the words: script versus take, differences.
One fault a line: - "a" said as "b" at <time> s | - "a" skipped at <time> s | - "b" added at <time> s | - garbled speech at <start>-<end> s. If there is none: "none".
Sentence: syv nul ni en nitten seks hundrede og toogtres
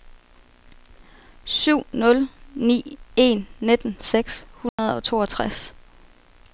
none